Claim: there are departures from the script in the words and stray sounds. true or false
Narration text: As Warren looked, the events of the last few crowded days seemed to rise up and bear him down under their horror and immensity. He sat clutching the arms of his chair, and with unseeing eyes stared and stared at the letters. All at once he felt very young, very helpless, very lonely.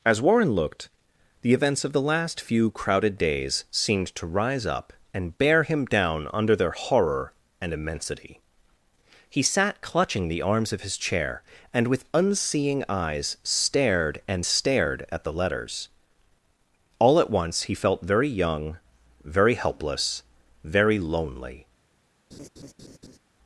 true